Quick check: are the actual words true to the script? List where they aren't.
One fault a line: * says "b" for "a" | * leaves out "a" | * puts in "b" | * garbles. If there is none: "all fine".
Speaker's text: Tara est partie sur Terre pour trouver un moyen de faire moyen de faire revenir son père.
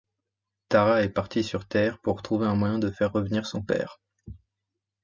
* leaves out "moyen de faire"